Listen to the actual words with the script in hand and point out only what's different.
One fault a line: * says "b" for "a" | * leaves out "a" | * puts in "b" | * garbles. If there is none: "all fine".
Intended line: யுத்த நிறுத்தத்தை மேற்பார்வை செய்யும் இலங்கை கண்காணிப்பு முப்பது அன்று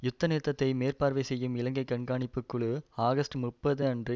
* puts in "குழு ஆகஸ்ட்"